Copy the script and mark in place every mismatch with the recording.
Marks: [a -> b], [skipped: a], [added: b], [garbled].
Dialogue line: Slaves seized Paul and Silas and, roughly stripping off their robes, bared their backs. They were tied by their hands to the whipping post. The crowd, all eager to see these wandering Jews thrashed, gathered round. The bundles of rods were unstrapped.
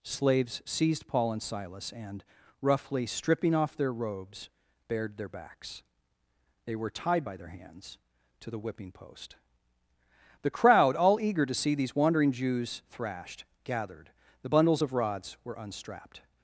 Slaves seized Paul and Silas and, roughly stripping off their robes, bared their backs. They were tied by their hands to the whipping post. The crowd, all eager to see these wandering Jews thrashed, gathered [skipped: round.] The bundles of rods were unstrapped.